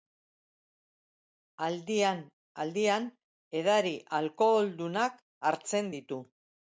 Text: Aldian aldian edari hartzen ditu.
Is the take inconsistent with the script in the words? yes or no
yes